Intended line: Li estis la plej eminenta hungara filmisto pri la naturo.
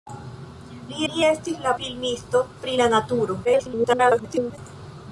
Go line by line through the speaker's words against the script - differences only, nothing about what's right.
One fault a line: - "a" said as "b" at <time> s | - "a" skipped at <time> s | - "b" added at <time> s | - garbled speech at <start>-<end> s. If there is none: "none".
- "li" added at 1.1 s
- "plej eminenta hungara" skipped at 1.7 s
- garbled speech at 3.4-4.6 s